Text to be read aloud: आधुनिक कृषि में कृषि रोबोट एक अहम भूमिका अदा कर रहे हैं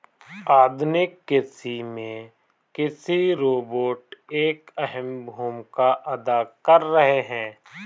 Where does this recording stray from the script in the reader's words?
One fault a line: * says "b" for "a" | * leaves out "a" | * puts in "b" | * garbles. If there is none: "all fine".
all fine